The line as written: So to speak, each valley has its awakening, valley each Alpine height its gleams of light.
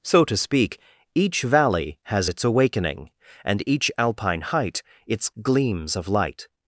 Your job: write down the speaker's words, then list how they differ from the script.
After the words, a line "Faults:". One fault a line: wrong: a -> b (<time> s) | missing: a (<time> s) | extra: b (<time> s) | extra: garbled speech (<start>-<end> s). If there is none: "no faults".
So to speak, each valley has its awakening, and each Alpine height its gleams of light.
Faults:
wrong: valley -> and (3.4 s)